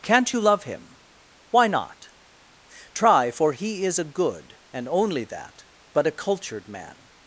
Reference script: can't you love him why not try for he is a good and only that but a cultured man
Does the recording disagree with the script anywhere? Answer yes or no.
no